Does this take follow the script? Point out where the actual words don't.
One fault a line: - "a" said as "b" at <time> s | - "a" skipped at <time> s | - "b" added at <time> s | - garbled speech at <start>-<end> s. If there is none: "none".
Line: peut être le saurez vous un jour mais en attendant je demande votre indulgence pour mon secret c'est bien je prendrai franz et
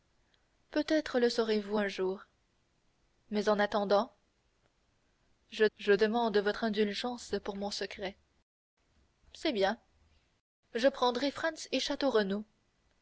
- "je" added at 5.8 s